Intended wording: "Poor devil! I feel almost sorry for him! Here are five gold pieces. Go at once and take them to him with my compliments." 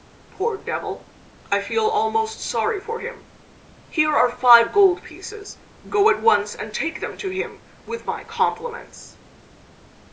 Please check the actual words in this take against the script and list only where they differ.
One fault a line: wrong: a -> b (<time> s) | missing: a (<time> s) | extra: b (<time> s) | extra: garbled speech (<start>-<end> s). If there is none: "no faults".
no faults